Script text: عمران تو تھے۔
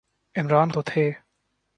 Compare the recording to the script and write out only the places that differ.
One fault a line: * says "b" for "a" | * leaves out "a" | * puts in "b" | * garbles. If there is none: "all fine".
all fine